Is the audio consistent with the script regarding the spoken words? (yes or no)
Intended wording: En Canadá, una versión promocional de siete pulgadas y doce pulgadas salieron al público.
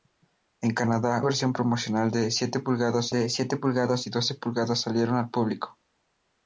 no